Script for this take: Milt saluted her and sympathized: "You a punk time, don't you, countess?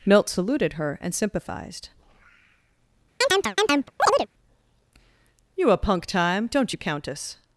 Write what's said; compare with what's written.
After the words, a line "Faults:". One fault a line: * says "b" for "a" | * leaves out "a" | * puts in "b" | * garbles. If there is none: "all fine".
Milt saluted her and sympathized: "You a punk time, don't you, countess?
Faults:
all fine